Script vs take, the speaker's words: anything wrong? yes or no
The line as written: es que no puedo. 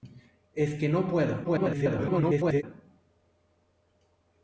yes